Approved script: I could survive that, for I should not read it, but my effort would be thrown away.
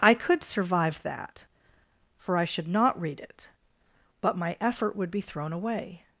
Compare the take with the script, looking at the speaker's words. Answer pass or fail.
pass